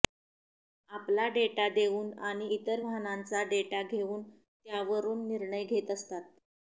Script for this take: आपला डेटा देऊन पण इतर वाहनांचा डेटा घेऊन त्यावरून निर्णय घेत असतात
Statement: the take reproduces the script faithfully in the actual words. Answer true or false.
false